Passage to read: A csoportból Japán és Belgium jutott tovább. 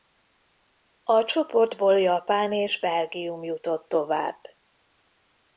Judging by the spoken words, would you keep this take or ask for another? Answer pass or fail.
pass